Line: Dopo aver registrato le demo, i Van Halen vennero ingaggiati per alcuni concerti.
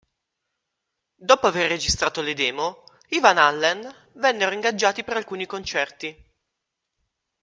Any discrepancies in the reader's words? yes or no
no